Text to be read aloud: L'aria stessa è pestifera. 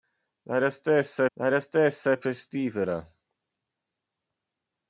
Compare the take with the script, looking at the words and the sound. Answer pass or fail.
fail